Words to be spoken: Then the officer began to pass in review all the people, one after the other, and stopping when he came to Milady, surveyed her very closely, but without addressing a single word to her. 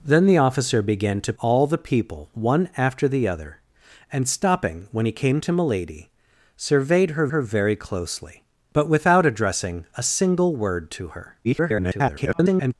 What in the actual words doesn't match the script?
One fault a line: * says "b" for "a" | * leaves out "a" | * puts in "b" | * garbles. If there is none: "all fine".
* leaves out "pass in review"
* puts in "her"
* garbles